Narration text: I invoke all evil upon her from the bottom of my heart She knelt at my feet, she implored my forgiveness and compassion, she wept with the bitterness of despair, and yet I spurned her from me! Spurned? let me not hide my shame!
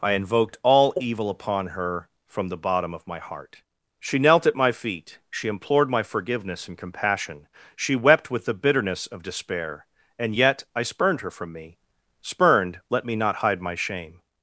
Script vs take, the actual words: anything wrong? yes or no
yes